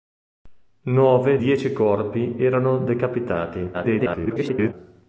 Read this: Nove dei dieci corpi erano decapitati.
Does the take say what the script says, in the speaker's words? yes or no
no